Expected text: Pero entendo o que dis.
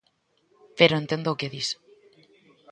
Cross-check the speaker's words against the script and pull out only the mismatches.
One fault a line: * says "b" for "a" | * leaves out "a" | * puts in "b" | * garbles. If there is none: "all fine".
all fine